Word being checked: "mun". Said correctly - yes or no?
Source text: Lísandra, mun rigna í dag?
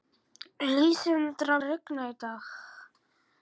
no